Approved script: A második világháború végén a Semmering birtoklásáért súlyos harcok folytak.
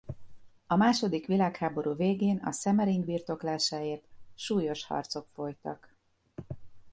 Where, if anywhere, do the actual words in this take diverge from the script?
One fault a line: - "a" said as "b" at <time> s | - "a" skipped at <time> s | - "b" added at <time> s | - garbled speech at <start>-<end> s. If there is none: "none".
none